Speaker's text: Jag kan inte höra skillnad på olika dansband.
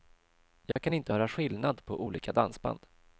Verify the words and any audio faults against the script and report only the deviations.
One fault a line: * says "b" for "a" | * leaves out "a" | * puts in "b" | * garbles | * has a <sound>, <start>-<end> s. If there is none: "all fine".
* has a dropout, 0.7-0.8 s